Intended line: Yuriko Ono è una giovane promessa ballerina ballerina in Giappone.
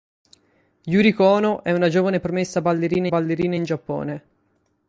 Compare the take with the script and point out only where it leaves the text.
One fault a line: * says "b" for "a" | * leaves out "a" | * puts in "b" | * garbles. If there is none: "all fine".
all fine